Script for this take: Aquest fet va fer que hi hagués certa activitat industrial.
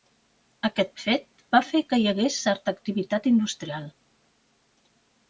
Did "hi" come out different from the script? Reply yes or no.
no